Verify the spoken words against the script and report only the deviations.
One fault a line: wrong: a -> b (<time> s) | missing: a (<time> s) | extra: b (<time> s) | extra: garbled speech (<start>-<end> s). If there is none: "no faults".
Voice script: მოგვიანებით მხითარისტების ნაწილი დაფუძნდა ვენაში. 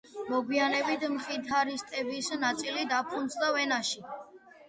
no faults